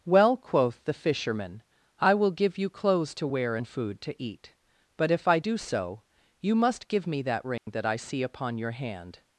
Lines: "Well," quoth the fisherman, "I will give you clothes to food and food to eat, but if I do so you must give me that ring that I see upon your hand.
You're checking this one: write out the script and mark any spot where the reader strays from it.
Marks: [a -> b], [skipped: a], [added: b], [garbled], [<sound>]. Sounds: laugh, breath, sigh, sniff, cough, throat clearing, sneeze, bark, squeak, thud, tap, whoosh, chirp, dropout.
"Well," quoth the fisherman, "I will give you clothes to [food -> wear] and food to eat, but if I do so you must give me that ring [dropout] that I see upon your hand.